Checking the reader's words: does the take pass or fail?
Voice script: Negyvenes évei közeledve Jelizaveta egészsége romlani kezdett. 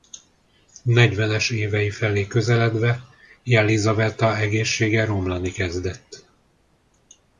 fail